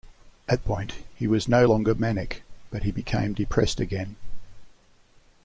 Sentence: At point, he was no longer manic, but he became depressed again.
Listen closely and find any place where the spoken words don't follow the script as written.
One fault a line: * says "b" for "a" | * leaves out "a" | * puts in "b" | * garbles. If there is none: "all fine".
all fine